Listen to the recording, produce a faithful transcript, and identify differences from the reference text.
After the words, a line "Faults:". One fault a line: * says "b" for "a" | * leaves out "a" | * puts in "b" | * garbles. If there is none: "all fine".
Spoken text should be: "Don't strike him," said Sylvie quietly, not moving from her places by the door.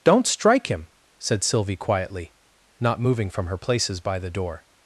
"Don't strike him," said Sylvie quietly, not moving from her places by the door.
Faults:
all fine